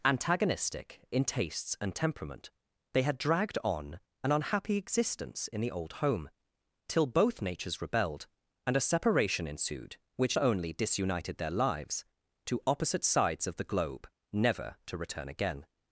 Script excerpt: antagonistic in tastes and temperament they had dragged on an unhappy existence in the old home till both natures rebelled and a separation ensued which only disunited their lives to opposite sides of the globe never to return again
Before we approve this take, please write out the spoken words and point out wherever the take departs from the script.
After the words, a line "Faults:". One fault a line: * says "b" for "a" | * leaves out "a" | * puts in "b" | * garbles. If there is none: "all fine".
antagonistic in tastes and temperament they had dragged on an unhappy existence in the old home till both natures rebelled and a separation ensued which only disunited their lives to opposite sides of the globe never to return again
Faults:
all fine